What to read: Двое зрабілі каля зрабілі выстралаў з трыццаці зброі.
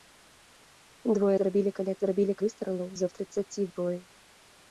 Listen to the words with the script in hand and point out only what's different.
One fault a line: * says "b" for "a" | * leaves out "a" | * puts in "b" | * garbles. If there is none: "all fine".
all fine